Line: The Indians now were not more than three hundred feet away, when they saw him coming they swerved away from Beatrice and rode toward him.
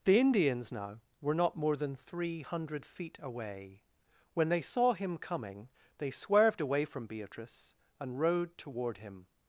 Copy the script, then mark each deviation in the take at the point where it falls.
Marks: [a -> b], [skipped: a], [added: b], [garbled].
The Indians now were not more than three hundred feet away, when they saw him coming they swerved away from Beatrice and rode toward him.